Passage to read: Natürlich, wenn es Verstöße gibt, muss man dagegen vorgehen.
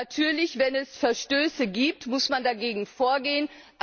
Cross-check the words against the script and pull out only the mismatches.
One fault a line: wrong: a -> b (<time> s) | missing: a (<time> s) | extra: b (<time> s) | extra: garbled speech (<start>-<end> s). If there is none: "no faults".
no faults